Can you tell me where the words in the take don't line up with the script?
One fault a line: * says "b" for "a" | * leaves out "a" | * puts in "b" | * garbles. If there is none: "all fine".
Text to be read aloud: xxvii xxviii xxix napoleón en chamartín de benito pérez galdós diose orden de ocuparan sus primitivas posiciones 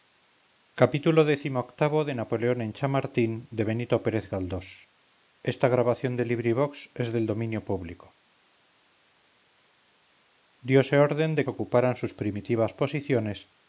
all fine